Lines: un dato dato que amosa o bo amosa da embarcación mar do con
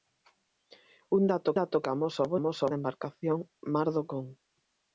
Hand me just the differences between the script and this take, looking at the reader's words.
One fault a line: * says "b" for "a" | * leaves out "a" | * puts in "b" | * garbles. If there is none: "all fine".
all fine